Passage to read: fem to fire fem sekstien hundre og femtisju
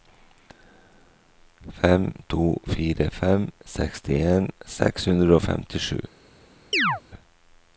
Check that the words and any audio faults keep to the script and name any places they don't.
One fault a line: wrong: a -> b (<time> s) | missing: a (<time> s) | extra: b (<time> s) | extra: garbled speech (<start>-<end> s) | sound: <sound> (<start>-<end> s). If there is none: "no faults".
extra: seks (4.8 s)
sound: chirp (6.7-7.0 s)